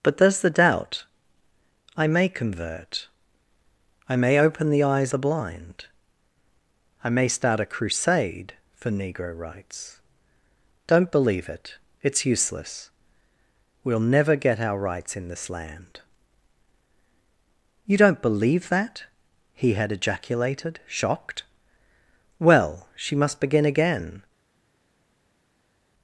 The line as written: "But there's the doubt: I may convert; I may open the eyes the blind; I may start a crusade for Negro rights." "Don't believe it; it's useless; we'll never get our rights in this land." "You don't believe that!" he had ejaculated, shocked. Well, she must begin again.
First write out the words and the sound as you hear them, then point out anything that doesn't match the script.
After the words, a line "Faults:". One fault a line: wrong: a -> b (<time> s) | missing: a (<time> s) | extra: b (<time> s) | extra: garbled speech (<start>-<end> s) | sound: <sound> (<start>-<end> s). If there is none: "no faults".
"But there's the doubt: I may convert; I may open the eyes the blind; I may start a crusade for Negro rights." "Don't believe it; it's useless; we'll never get our rights in this land." "You don't believe that!" he had ejaculated, shocked. Well, she must begin again.
Faults:
no faults